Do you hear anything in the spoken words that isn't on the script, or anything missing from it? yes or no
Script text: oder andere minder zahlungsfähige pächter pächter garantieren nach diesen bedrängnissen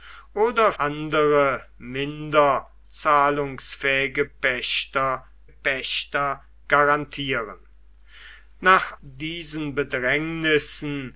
no